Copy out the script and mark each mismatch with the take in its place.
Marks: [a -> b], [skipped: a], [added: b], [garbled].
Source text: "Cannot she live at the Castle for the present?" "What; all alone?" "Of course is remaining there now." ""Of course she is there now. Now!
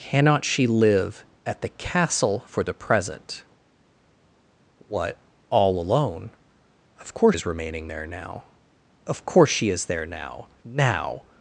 "Cannot she live at the Castle for the present?" "What; all alone?" "Of course is remaining there now." ""Of course she is there now. Now!